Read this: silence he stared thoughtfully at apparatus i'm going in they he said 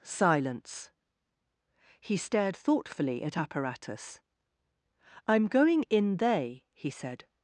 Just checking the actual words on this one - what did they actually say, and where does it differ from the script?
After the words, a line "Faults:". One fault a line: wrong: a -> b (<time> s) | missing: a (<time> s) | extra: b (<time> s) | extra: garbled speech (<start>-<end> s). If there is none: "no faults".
silence he stared thoughtfully at apparatus i'm going in they he said
Faults:
no faults